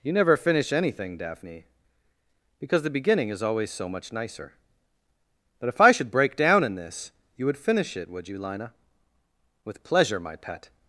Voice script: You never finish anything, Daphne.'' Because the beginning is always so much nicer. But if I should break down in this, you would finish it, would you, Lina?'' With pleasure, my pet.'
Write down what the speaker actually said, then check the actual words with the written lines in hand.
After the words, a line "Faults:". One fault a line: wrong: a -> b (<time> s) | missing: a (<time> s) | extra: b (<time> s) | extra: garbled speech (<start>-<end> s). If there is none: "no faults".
You never finish anything, Daphne.'' Because the beginning is always so much nicer. But if I should break down in this, you would finish it, would you, Lina?'' With pleasure, my pet.'
Faults:
no faults